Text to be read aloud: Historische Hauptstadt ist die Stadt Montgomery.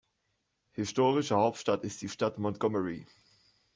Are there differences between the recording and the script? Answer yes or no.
no